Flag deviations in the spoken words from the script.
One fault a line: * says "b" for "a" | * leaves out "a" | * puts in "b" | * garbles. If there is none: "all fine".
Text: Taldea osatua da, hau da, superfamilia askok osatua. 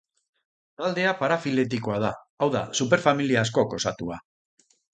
* says "parafiletikoa" for "osatua"